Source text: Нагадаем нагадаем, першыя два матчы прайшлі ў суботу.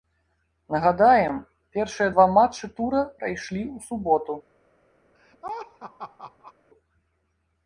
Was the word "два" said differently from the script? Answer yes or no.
no